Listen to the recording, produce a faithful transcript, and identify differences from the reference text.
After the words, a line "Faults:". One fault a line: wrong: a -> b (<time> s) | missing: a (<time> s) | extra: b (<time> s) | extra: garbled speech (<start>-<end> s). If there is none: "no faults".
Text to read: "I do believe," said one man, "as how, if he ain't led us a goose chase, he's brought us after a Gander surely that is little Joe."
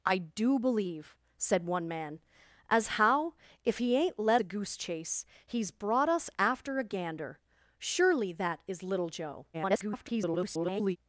"I do believe," said one man, "as how, if he ain't led a goose chase, he's brought us after a Gander surely that is little Joe." [garbled]
Faults:
missing: us (4.4 s)
extra: garbled speech (9.5-11.0 s)